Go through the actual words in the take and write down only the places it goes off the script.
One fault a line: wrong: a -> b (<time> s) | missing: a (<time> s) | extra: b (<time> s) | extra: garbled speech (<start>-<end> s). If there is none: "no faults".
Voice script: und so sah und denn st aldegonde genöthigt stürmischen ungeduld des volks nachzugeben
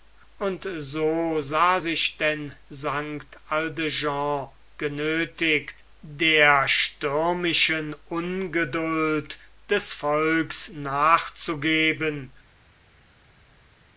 wrong: und -> sich (1.8 s)
extra: der (6.0 s)